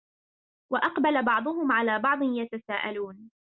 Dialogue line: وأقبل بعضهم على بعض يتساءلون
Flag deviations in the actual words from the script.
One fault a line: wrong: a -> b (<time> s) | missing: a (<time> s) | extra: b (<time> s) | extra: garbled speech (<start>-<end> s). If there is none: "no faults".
no faults